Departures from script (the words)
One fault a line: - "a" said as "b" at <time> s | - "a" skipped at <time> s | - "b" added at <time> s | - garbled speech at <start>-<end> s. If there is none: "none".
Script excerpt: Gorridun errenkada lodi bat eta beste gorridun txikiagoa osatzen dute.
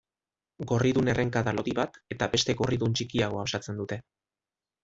none